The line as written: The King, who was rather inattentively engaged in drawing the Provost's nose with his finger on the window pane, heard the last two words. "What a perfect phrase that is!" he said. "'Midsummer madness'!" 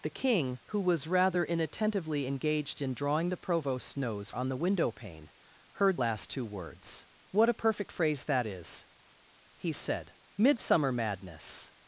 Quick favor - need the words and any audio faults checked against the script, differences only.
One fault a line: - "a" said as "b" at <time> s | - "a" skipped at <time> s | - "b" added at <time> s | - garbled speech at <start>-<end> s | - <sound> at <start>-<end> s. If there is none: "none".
- "with his finger" skipped at 4.3 s
- "the" skipped at 6.0 s